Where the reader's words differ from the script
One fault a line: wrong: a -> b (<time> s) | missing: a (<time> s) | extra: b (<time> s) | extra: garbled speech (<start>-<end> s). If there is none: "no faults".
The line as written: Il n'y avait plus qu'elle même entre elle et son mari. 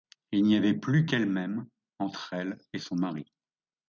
no faults